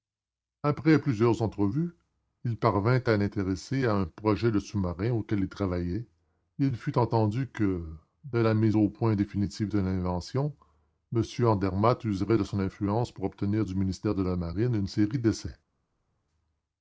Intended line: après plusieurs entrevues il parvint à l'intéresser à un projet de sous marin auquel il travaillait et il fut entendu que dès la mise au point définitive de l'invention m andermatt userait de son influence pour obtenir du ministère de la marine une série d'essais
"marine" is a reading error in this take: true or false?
false